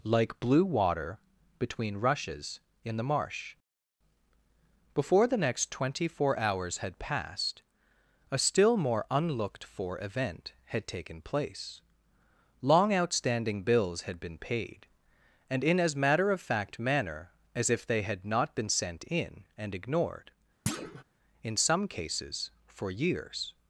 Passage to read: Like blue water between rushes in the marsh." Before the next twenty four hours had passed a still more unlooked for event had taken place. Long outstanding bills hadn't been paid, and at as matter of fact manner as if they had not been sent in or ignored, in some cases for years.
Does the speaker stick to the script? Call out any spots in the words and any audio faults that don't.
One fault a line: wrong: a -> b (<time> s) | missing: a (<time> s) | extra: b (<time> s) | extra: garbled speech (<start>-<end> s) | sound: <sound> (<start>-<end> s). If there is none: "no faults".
wrong: hadn't -> had (14.0 s)
wrong: at -> in (15.6 s)
wrong: or -> and (19.6 s)
sound: thud (20.7-21.0 s)